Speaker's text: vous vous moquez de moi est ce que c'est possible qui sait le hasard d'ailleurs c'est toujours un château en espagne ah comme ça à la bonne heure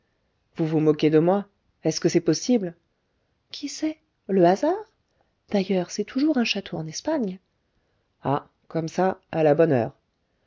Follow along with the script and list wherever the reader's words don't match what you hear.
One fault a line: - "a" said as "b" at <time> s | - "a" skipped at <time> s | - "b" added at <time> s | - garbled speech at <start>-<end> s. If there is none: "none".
none